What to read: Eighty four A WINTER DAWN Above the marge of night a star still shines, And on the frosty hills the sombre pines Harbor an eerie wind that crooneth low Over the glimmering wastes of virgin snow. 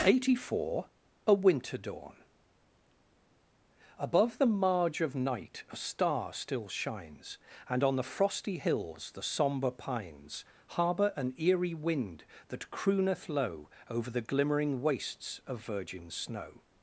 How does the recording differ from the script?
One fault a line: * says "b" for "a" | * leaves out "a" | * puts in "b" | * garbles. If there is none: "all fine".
all fine